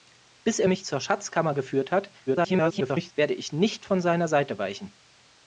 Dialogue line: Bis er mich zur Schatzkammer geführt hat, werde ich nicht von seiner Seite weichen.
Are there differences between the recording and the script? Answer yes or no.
yes